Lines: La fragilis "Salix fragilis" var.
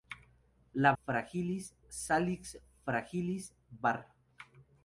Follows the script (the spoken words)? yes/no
yes